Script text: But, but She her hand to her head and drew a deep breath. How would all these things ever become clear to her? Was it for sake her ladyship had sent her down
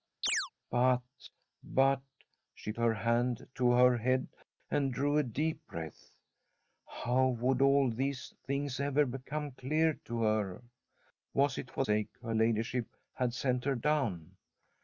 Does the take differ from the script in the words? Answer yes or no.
no